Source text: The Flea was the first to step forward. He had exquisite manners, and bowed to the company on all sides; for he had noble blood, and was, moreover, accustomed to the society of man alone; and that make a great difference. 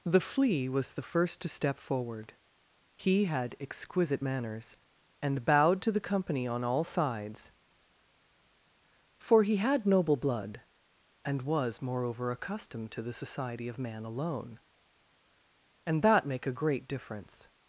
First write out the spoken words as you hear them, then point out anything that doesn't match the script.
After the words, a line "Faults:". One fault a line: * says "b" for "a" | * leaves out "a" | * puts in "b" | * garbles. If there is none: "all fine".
The Flea was the first to step forward. He had exquisite manners, and bowed to the company on all sides; for he had noble blood, and was, moreover, accustomed to the society of man alone; and that make a great difference.
Faults:
all fine